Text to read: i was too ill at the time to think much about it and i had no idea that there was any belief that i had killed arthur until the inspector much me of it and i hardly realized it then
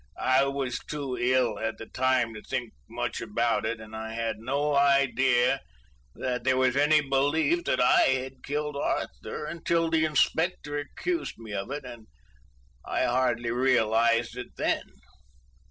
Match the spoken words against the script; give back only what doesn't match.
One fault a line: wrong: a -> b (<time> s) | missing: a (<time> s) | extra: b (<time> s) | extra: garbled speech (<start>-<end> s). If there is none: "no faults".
wrong: much -> accused (10.8 s)